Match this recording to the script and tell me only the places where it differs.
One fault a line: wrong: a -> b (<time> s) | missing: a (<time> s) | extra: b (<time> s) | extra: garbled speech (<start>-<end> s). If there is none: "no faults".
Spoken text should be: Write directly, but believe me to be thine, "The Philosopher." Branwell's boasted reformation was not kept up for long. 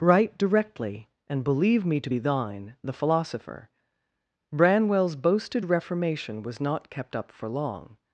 wrong: but -> and (1.3 s)